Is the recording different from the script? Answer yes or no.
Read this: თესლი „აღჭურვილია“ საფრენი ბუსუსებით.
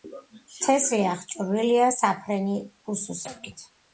no